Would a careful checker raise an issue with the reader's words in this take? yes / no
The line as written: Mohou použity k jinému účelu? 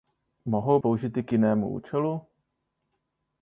no